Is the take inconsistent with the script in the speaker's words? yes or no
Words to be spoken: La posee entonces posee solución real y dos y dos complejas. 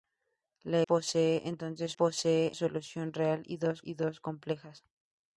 no